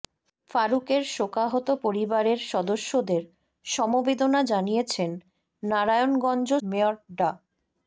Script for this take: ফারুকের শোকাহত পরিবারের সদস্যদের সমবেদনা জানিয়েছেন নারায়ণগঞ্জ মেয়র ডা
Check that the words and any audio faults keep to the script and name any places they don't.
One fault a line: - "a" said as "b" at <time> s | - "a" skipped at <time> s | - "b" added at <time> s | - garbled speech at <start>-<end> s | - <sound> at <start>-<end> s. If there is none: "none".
none